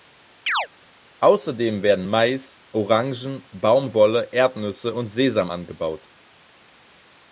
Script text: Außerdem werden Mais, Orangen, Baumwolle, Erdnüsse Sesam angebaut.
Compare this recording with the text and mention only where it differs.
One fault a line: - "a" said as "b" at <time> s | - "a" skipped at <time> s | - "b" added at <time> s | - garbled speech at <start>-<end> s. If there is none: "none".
- "und" added at 4.9 s